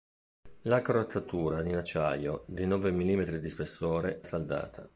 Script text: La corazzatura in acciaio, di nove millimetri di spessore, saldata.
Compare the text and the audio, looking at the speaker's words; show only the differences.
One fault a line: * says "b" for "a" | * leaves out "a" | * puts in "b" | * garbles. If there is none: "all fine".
all fine